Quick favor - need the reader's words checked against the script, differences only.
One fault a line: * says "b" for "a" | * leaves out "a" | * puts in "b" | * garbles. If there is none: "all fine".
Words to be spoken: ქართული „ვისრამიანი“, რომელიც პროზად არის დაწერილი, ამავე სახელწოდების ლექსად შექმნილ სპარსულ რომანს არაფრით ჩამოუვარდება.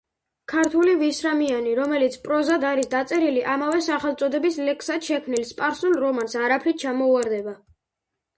all fine